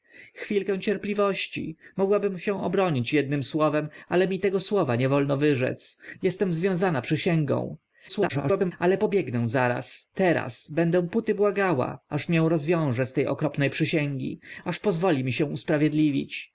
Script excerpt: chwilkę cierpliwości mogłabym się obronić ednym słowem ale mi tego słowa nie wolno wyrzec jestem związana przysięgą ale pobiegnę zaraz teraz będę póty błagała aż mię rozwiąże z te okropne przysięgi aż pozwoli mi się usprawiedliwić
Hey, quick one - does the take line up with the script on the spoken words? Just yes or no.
no